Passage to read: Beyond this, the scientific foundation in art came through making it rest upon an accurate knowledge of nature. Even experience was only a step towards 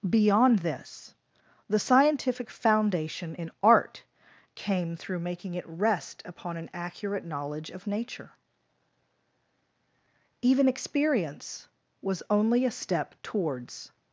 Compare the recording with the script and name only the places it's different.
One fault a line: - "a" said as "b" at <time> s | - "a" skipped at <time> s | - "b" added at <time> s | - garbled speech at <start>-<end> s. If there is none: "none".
none